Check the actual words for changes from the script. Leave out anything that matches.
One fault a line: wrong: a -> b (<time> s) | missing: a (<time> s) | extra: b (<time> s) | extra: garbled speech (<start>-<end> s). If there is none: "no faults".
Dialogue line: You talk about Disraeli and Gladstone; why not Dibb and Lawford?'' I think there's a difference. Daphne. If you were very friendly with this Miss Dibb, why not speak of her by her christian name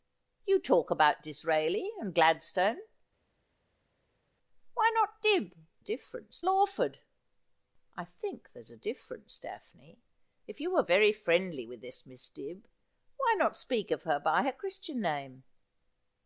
wrong: and -> difference (5.8 s)